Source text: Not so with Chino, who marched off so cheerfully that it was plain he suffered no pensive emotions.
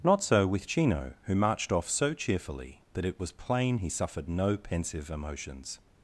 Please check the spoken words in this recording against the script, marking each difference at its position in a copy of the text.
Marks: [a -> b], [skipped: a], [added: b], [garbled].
Not so with Chino, who marched off so cheerfully that it was plain he suffered no pensive emotions.